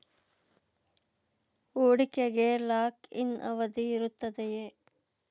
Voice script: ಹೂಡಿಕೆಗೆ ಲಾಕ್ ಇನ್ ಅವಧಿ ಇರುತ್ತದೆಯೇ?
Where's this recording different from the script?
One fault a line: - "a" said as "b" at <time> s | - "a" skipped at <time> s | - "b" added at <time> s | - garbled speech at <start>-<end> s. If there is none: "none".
none